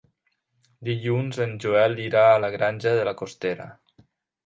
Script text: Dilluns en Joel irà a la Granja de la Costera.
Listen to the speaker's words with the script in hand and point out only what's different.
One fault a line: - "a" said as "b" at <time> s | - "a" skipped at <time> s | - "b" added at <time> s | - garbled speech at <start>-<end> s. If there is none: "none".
none